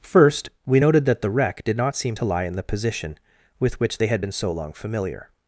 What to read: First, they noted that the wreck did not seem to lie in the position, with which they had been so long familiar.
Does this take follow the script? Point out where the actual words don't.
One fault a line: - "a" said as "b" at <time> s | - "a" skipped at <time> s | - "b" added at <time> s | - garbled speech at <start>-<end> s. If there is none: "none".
- "they" said as "we" at 0.7 s